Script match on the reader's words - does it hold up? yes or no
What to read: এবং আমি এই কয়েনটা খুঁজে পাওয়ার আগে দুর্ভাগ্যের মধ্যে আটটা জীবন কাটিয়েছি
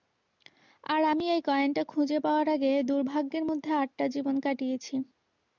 no